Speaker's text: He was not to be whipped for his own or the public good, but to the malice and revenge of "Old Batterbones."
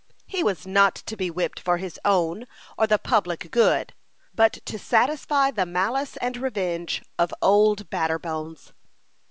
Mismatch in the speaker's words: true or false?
true